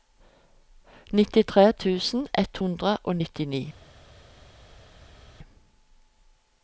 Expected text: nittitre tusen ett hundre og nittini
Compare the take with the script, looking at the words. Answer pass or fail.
pass